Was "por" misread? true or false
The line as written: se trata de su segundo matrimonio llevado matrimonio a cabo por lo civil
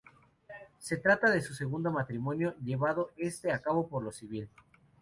false